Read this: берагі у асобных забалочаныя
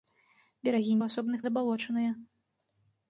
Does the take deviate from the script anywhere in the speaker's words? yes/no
no